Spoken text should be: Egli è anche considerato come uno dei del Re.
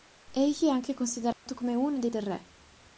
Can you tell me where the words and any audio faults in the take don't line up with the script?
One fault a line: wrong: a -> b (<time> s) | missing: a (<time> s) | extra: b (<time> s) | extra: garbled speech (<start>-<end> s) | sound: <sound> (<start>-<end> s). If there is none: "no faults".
sound: dropout (1.3-1.5 s)